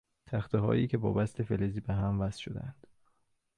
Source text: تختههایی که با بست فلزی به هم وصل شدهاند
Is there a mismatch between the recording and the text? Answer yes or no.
no